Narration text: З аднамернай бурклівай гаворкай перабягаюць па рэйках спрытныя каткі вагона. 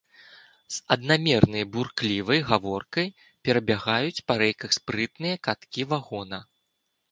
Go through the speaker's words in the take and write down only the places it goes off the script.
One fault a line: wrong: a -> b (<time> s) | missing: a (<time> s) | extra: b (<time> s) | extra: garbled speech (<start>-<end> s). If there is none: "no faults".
no faults